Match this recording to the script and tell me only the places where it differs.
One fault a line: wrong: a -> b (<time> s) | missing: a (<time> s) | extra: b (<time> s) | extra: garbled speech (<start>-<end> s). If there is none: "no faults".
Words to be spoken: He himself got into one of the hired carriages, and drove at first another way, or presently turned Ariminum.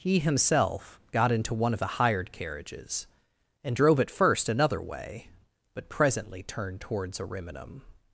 wrong: or -> but (5.7 s)
extra: towards (6.8 s)